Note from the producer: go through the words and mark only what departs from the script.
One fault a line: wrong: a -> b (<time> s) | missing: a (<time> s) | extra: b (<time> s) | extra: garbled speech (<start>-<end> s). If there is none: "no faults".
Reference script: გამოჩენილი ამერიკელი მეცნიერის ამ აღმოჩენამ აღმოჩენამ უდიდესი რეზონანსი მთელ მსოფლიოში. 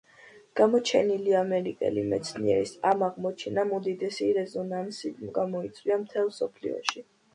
missing: აღმოჩენამ (3.8 s)
extra: გამოიწვია (5.4 s)